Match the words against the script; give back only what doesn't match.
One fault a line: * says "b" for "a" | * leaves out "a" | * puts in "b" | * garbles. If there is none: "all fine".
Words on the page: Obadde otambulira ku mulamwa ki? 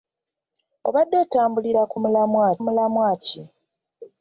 * puts in "mulamwa"